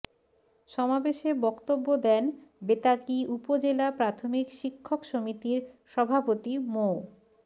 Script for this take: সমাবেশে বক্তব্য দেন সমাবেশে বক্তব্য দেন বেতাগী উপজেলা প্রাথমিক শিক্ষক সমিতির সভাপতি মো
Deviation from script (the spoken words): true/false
true